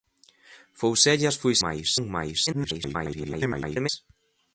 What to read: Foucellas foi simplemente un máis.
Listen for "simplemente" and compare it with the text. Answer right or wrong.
wrong